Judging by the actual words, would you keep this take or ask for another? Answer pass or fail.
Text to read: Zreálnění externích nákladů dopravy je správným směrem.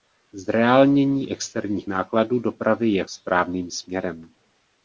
pass